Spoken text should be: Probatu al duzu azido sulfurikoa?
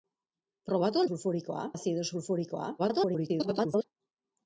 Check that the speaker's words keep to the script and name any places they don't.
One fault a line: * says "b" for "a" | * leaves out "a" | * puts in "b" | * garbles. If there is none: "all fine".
* says "sulfurikoa" for "duzu"
* garbles